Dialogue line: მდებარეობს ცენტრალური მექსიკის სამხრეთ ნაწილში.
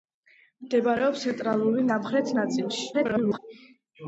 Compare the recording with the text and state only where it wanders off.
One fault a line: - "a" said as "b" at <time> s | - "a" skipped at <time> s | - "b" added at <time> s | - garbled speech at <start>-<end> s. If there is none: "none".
- "მექსიკის" skipped at 1.8 s
- garbled speech at 2.9-3.4 s